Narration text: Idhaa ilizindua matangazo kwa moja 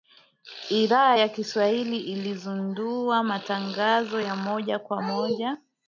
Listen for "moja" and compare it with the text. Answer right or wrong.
right